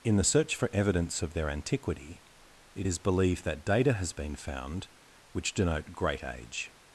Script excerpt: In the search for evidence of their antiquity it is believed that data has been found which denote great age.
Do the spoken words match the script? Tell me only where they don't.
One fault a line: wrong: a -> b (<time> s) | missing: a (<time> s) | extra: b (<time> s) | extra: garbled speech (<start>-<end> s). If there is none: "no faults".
no faults